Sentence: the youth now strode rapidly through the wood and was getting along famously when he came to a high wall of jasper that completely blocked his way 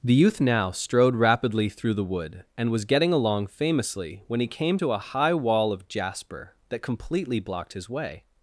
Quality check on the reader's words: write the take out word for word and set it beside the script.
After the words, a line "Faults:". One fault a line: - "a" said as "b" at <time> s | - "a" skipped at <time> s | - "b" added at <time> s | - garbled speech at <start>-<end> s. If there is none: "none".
the youth now strode rapidly through the wood and was getting along famously when he came to a high wall of jasper that completely blocked his way
Faults:
none